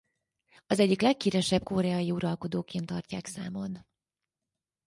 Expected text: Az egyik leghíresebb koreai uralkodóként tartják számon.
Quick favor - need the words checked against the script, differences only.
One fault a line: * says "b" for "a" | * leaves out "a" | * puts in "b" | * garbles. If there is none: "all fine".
all fine